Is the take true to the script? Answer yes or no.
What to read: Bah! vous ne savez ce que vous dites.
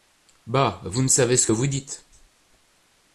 yes